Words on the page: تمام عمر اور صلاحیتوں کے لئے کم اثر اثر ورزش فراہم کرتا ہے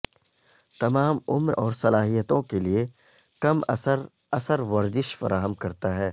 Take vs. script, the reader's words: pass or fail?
pass